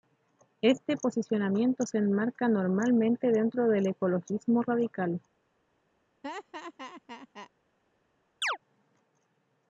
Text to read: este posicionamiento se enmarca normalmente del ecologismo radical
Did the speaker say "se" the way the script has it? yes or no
yes